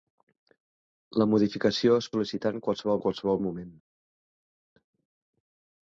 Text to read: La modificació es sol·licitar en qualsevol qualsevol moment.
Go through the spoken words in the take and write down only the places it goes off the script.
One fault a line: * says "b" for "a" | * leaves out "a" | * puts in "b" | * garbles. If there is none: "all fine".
all fine